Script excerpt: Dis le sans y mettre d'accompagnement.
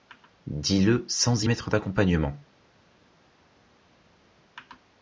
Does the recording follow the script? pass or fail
pass